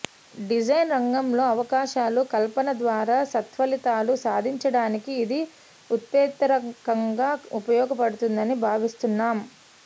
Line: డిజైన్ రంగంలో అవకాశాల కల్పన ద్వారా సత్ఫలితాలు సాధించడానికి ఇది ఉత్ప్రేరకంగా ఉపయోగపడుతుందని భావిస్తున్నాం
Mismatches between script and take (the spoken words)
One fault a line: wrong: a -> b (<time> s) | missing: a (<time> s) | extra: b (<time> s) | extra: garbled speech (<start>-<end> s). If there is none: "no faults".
no faults